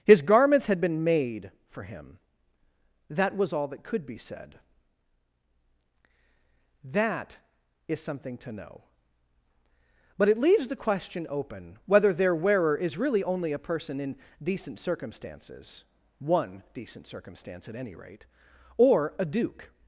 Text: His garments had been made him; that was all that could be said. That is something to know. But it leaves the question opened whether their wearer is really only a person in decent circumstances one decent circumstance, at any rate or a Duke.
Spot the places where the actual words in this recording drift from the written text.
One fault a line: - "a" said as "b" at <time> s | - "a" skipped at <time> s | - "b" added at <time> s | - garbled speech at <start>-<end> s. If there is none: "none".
- "for" added at 1.7 s
- "opened" said as "open" at 11.3 s